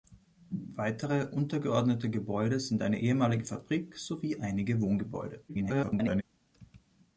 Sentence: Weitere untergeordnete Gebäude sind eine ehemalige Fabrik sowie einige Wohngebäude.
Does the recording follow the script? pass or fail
fail